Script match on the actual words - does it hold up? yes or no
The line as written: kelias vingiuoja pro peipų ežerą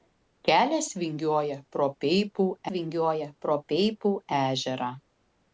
no